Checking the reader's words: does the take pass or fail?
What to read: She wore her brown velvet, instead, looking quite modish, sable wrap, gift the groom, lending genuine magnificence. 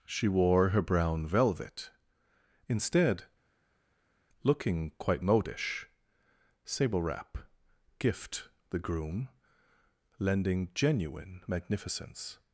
pass